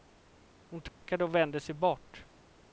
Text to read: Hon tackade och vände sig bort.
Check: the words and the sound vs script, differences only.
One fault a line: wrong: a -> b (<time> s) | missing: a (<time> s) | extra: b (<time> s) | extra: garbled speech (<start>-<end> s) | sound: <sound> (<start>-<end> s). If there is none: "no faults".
sound: dropout (0.9-1.0 s)